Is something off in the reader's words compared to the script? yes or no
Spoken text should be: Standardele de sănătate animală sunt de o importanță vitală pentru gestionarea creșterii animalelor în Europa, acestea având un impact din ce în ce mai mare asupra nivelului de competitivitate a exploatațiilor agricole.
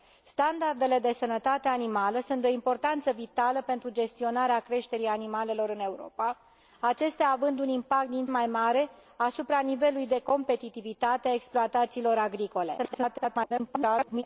yes